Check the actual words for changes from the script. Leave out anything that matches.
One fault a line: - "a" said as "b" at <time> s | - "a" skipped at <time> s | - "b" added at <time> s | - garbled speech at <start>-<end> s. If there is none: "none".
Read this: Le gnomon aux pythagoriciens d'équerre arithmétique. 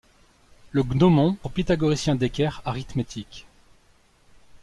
none